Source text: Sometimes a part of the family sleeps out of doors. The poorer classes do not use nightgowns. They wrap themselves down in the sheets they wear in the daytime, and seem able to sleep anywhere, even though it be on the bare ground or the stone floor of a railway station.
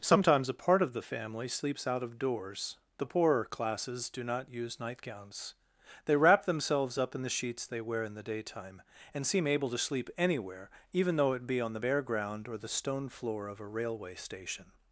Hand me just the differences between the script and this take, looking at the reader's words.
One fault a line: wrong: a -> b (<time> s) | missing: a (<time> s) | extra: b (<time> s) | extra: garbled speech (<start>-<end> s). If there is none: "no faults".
wrong: down -> up (7.0 s)